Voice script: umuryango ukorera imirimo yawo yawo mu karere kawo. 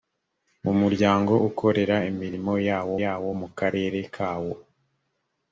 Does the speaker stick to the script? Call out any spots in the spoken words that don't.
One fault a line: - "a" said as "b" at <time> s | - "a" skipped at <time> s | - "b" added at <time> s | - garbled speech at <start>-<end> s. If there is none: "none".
none